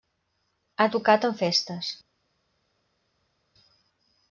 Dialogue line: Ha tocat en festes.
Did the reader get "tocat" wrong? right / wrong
right